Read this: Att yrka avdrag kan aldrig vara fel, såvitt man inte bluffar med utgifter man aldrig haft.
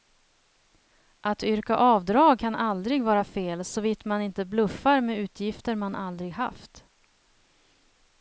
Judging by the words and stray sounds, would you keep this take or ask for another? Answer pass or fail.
pass